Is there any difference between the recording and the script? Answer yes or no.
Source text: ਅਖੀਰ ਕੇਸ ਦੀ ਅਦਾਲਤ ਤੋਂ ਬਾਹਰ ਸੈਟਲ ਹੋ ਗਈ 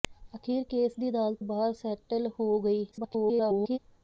yes